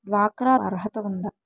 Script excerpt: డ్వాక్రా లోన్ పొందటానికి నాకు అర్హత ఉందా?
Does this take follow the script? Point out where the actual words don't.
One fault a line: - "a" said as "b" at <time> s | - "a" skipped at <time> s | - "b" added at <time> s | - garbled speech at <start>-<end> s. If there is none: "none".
- "లోన్ పొందటానికి నాకు" skipped at 0.6 s